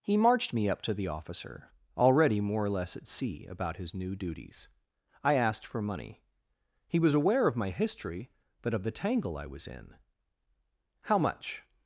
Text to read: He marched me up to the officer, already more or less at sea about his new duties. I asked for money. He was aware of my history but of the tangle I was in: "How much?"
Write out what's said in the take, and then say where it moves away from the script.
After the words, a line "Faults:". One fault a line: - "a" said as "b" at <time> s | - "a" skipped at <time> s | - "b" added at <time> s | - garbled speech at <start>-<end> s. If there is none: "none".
He marched me up to the officer, already more or less at sea about his new duties. I asked for money. He was aware of my history but of the tangle I was in: "How much?"
Faults:
none